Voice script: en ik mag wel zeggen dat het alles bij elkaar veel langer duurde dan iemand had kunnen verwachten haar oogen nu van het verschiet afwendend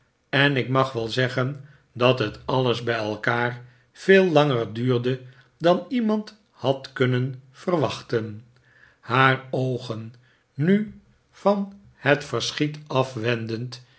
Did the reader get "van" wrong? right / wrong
right